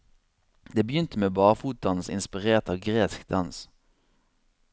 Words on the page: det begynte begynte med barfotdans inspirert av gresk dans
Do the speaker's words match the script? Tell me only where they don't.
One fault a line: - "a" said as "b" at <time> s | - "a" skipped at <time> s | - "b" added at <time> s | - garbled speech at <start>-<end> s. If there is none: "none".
- "begynte" skipped at 1.2 s